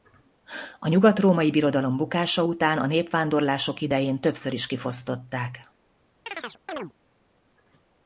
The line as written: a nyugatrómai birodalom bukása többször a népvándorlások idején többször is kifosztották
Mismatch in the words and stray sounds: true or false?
true